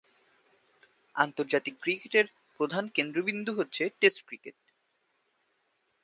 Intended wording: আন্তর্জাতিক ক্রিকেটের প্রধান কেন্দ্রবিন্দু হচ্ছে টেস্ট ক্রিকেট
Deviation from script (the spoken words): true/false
false